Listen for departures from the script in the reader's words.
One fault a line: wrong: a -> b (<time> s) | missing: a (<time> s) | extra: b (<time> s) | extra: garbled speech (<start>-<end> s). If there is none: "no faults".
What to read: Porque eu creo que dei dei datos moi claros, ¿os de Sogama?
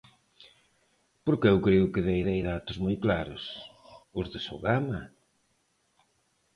no faults